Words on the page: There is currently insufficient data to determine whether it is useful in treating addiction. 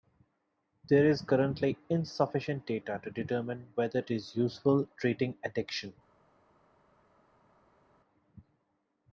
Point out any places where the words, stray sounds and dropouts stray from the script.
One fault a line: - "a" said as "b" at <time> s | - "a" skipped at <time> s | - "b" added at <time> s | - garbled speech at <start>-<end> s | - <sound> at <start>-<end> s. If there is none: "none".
- "it" skipped at 4.0 s
- "in" skipped at 4.9 s